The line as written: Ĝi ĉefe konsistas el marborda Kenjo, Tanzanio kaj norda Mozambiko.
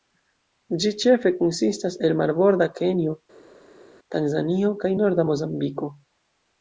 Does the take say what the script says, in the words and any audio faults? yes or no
yes